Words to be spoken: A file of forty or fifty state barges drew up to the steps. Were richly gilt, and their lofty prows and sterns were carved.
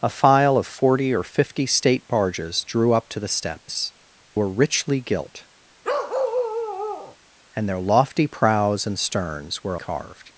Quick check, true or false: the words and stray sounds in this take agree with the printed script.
false